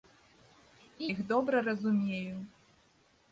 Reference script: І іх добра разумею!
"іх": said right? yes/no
yes